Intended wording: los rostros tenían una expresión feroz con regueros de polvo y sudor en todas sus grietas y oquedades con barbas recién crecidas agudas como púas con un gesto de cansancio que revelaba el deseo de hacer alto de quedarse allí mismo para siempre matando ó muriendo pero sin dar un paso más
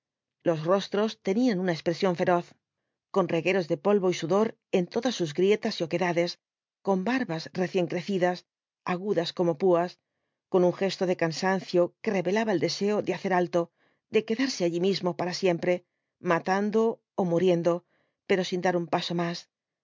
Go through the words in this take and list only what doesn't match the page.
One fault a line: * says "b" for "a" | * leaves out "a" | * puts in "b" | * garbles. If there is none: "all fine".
all fine